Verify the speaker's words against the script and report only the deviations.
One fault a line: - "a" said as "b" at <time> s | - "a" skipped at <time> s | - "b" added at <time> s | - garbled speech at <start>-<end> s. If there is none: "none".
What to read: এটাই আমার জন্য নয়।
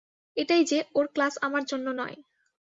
- "যে ওর ক্লাস" added at 0.6 s